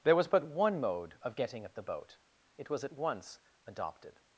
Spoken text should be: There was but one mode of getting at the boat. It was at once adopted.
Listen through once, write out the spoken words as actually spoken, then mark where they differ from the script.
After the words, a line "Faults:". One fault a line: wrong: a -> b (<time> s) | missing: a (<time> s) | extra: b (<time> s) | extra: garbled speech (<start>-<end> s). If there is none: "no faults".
There was but one mode of getting at the boat. It was at once adopted.
Faults:
no faults